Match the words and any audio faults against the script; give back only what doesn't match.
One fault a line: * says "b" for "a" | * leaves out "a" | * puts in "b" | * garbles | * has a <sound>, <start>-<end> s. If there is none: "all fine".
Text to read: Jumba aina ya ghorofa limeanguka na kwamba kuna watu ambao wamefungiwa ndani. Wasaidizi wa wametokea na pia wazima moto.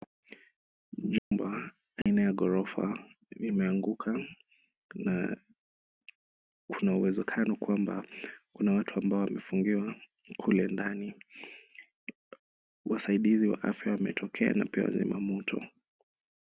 * has a dropout, 1.2-1.3 s
* has a dropout, 2.0-2.1 s
* puts in "kuna uwezekano"
* puts in "kule"
* puts in "afya"